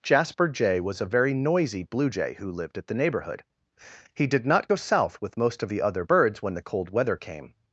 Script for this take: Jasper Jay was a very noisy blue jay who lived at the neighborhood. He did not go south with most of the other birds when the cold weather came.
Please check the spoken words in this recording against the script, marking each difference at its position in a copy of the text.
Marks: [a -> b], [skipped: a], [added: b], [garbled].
Jasper Jay was a very noisy blue jay who lived at the neighborhood. He did not go south with most of the other birds when the cold weather came.